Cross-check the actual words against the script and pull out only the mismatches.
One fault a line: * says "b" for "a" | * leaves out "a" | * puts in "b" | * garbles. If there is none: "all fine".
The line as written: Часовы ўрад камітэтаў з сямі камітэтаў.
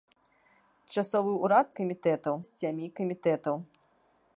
all fine